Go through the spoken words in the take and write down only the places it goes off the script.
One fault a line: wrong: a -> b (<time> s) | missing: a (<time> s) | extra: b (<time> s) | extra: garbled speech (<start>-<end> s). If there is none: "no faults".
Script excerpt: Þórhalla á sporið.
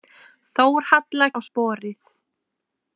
no faults